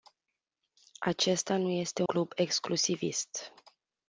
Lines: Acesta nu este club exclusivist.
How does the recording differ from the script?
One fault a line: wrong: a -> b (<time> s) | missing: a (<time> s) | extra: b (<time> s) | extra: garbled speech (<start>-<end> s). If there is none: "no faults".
no faults